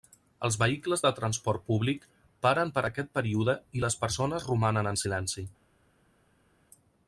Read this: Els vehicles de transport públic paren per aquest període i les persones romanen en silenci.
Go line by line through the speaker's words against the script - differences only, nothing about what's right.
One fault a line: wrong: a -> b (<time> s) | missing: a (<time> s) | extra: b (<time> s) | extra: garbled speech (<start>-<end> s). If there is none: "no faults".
no faults